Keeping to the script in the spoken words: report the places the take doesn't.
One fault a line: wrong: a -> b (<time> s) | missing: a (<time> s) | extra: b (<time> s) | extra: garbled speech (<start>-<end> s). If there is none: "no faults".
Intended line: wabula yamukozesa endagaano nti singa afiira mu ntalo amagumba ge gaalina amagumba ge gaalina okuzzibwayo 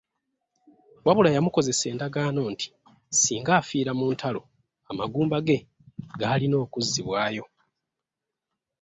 missing: amagumba ge gaalina (6.5 s)